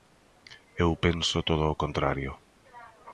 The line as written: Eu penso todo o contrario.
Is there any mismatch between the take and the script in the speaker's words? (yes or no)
no